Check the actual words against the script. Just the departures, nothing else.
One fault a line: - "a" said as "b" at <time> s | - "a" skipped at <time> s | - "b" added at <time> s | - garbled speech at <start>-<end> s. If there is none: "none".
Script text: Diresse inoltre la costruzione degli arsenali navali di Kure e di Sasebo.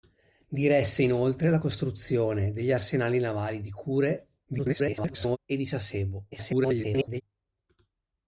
- garbled speech at 4.5-5.4 s
- garbled speech at 6.3-7.2 s